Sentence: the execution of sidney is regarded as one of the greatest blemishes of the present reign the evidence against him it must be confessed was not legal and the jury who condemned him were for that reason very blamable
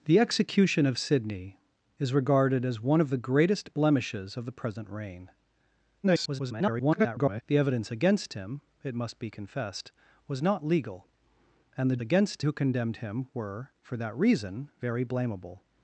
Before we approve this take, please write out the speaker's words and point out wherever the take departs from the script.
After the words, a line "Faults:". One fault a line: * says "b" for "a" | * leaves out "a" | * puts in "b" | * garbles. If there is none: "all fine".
the execution of sidney is regarded as one of the greatest blemishes of the present reign [garbled] the evidence against him it must be confessed was not legal and the against who condemned him were for that reason very blamable
Faults:
* garbles
* says "against" for "jury"